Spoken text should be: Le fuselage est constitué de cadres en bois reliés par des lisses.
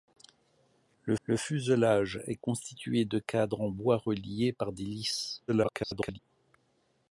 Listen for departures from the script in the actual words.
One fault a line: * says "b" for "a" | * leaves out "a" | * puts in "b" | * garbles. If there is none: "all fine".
* puts in "le"
* garbles